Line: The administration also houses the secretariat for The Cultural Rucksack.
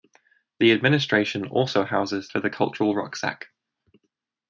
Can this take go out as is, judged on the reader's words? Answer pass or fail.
fail